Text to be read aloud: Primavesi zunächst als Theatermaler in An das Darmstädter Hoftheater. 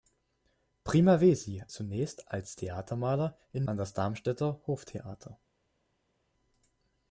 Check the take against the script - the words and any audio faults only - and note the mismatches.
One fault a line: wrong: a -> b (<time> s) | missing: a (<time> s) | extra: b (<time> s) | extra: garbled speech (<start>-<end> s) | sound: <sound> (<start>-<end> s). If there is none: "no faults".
no faults